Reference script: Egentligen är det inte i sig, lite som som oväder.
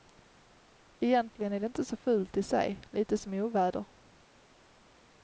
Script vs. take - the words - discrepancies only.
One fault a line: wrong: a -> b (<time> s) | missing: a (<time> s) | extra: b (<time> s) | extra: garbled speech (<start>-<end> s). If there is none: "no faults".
extra: så fult (1.9 s)
missing: som (3.3 s)